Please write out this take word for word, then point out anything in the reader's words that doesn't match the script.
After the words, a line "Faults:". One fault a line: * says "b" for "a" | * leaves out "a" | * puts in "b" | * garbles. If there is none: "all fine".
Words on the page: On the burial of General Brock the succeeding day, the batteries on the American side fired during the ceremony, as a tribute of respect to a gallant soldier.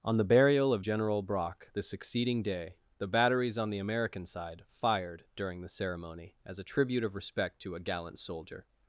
On the burial of General Brock the succeeding day, the batteries on the American side fired during the ceremony, as a tribute of respect to a gallant soldier.
Faults:
all fine